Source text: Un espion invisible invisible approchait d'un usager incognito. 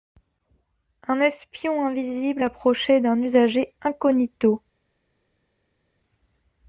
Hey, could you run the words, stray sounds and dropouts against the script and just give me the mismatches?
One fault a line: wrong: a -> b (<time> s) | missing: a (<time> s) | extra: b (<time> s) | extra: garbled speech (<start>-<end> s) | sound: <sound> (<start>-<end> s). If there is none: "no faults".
missing: invisible (2.4 s)